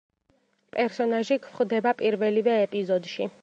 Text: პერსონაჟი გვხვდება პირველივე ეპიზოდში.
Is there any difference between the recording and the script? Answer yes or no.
no